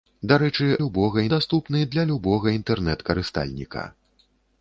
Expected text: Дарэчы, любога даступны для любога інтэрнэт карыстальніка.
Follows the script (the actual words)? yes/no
yes